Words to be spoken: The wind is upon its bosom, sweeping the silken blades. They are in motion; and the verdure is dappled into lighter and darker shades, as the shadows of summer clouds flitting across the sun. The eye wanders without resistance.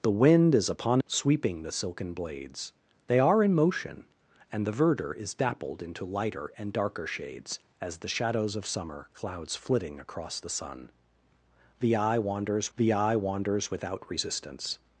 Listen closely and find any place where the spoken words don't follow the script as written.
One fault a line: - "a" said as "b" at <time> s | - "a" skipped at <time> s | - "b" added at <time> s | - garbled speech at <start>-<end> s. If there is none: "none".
- "its bosom" skipped at 1.0 s
- "the eye wanders" added at 12.8 s